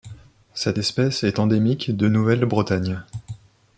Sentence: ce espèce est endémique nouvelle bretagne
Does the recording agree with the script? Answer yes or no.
no